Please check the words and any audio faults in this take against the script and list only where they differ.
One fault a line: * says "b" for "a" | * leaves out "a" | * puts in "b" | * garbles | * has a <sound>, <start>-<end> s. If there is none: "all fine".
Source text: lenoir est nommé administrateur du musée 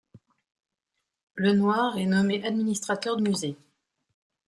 * leaves out "du"